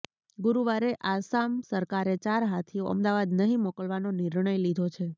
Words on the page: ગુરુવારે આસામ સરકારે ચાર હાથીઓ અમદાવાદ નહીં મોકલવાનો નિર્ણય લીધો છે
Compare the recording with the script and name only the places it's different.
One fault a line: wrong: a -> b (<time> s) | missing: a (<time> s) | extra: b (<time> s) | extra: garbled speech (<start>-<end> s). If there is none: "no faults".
no faults